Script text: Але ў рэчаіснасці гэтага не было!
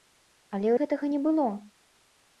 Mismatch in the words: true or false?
true